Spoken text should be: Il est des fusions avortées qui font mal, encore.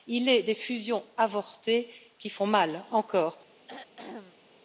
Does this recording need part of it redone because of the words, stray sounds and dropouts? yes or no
yes